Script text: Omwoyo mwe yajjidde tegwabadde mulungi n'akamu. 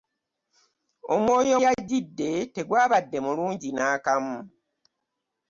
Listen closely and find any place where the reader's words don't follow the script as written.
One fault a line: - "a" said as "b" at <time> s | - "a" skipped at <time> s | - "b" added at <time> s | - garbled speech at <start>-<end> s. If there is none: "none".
- "mwe" skipped at 1.6 s